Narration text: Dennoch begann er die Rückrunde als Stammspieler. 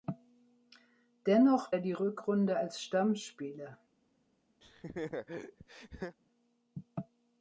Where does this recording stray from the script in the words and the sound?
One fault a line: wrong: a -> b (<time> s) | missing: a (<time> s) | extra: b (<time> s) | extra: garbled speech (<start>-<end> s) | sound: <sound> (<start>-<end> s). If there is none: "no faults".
missing: begann (1.8 s)
sound: laugh (4.6-6.2 s)